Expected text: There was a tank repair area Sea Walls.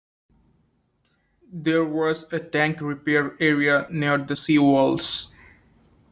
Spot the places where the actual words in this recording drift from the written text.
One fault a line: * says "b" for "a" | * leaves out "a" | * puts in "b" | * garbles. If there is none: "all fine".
* puts in "near the"